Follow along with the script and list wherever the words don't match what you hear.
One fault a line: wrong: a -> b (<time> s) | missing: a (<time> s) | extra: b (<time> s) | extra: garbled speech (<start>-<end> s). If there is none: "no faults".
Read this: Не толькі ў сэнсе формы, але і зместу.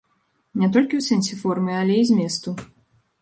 no faults